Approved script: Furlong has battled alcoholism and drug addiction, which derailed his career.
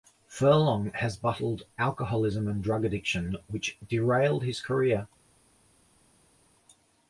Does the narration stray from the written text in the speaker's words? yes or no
no